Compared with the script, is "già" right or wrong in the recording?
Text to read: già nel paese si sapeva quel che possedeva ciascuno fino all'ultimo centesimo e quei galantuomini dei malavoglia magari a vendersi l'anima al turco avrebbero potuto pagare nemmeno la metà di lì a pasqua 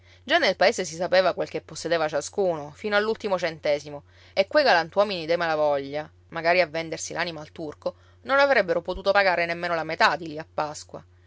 right